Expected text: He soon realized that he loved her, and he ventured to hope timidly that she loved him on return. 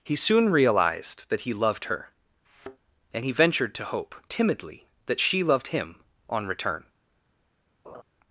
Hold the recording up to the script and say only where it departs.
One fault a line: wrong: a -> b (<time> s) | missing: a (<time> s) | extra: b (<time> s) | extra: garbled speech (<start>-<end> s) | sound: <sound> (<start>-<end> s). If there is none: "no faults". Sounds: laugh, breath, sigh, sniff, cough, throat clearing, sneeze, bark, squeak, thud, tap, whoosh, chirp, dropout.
sound: thud (2.4-2.8 s)
sound: laugh (7.8-8.0 s)